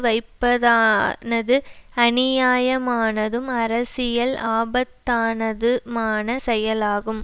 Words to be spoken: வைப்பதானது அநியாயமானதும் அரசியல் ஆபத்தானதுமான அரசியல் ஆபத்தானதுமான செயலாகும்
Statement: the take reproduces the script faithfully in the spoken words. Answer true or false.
false